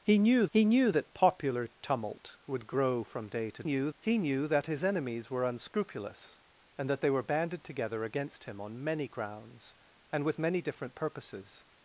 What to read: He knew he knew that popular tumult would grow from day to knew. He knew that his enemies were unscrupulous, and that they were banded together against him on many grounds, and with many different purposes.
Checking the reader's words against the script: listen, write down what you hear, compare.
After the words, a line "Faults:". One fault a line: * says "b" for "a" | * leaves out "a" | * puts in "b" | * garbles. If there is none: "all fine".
He knew he knew that popular tumult would grow from day to knew. He knew that his enemies were unscrupulous, and that they were banded together against him on many grounds, and with many different purposes.
Faults:
all fine